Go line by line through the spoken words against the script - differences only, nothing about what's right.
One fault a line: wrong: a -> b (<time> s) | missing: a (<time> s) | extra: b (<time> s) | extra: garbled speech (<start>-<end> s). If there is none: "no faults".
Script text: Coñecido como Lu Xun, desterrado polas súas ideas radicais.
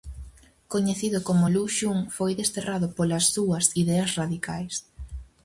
extra: foi (2.1 s)